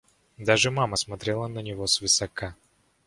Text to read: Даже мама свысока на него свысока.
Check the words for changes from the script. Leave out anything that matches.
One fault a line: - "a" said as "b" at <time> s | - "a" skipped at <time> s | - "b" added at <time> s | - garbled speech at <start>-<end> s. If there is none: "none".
- "свысока" said as "смотрела" at 1.0 s